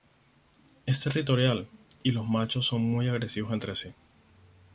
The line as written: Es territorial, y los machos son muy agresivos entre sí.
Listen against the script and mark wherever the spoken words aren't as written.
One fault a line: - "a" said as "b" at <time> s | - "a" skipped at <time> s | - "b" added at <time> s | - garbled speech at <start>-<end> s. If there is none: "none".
none